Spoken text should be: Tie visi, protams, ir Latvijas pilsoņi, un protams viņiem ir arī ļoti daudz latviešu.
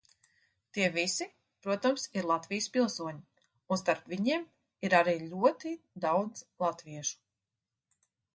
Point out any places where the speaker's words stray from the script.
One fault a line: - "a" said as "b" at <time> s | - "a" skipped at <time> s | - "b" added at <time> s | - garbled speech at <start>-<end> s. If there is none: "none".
- "protams" said as "starp" at 3.8 s